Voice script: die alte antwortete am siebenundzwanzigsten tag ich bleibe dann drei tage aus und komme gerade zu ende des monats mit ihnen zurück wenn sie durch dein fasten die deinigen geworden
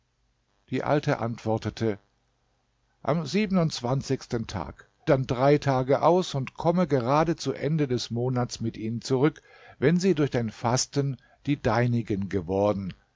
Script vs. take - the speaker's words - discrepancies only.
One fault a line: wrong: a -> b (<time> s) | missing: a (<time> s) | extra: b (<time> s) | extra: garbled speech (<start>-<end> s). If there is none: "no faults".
missing: ich bleibe (4.9 s)